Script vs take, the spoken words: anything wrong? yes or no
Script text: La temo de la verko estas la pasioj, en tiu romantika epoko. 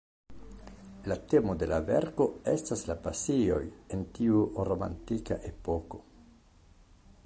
no